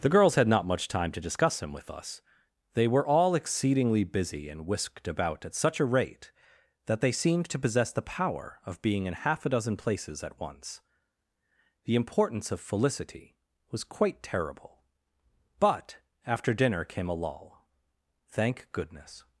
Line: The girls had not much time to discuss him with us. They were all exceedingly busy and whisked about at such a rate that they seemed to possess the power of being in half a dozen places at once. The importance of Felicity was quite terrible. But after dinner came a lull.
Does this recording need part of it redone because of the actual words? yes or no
yes